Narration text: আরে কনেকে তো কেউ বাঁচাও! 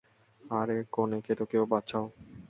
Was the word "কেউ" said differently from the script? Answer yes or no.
no